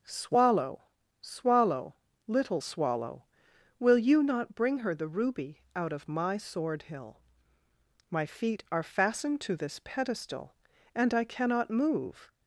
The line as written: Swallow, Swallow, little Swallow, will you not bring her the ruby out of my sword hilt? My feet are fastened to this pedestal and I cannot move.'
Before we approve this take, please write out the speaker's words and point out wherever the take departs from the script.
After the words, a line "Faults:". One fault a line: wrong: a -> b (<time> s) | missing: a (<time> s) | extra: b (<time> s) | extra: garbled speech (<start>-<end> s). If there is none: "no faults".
Swallow, Swallow, little Swallow, will you not bring her the ruby out of my sword hill? My feet are fastened to this pedestal and I cannot move.'
Faults:
wrong: hilt -> hill (6.8 s)